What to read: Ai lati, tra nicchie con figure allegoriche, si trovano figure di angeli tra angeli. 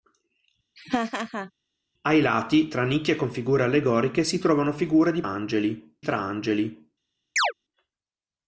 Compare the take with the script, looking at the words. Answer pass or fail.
pass